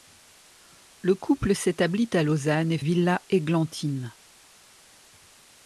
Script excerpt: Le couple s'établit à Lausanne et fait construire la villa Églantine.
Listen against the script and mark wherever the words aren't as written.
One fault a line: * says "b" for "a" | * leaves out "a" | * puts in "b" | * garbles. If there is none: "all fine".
* leaves out "fait construire la"